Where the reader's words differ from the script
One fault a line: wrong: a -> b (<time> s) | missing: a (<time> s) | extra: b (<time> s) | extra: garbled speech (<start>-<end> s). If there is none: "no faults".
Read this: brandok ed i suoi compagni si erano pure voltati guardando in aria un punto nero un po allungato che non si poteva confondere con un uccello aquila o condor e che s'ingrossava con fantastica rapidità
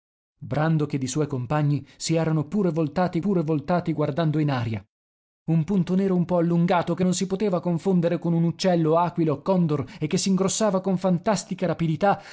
extra: pure voltati (3.2 s)